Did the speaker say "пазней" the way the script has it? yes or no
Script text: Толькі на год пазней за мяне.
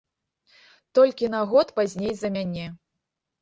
yes